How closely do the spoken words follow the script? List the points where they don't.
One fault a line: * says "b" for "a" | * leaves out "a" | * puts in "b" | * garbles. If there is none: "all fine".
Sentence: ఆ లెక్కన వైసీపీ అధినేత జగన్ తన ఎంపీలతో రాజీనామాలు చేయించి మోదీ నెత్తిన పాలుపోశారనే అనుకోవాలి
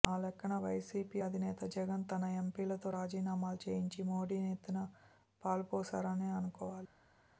all fine